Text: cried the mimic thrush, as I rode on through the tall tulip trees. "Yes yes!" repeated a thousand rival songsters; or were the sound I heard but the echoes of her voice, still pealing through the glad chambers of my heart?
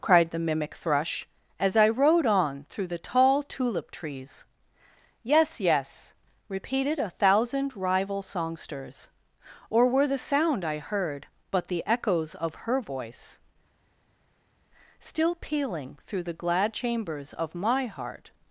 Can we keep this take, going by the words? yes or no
yes